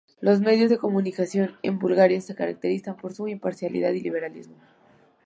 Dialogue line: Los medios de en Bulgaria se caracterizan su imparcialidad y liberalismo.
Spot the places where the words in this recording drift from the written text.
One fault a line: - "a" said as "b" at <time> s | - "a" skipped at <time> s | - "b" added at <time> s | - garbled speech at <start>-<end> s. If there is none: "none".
- "comunicación" added at 0.8 s
- "por" added at 2.9 s